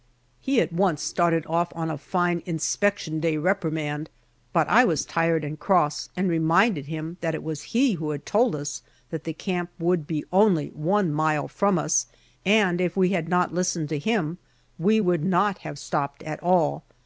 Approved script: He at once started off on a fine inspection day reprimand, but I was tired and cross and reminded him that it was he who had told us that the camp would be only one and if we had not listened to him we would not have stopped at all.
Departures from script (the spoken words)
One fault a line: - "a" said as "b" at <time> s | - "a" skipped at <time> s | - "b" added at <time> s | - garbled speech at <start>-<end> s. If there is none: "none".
- "mile from us" added at 11.1 s